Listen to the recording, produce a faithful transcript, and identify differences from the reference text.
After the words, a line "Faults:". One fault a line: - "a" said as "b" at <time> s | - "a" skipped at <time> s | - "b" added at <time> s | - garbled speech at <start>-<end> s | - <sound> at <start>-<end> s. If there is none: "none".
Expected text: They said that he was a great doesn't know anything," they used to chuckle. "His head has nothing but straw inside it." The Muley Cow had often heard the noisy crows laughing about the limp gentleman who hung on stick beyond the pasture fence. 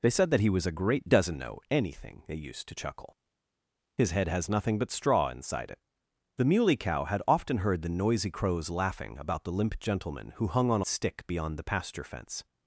They said that he was a great doesn't know anything," they used to chuckle. "His head has nothing but straw inside it." The Muley Cow had often heard the noisy crows laughing about the limp gentleman who hung on stick beyond the pasture fence.
Faults:
none